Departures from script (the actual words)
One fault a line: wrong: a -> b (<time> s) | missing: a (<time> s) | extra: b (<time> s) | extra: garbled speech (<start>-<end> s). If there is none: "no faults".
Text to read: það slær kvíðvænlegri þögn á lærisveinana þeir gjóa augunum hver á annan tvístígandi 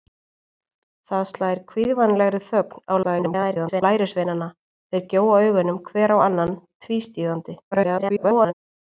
extra: garbled speech (3.0-3.8 s)
extra: garbled speech (7.7-8.5 s)